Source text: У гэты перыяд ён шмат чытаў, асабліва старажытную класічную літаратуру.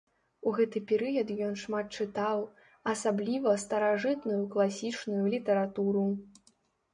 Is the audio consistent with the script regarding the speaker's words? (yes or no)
yes